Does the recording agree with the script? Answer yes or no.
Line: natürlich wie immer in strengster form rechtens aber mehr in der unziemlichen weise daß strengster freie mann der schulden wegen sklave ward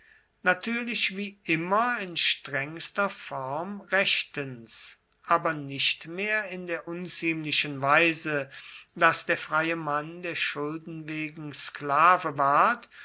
no